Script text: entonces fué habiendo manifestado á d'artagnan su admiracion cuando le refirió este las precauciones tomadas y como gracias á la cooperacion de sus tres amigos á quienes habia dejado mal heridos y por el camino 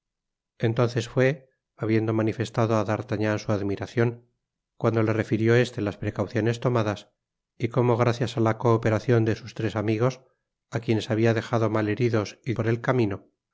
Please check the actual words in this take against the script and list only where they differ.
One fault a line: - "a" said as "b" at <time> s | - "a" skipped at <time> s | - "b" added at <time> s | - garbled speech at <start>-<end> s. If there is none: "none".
none